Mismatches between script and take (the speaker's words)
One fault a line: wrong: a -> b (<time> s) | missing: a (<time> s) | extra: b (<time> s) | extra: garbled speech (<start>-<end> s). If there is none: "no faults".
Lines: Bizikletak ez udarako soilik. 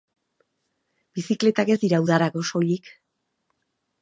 extra: dira (1.8 s)